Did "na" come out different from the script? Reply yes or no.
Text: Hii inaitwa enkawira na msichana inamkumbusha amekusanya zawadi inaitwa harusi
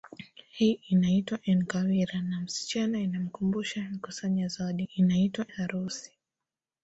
no